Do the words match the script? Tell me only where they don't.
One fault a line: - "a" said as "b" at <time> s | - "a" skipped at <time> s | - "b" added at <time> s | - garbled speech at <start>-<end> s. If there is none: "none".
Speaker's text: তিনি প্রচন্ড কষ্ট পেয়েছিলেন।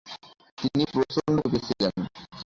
- "কষ্ট" skipped at 1.4 s